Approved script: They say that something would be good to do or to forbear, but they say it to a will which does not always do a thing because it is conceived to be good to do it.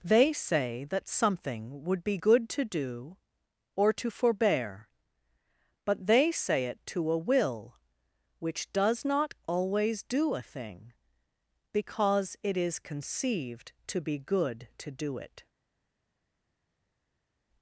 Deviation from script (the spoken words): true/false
false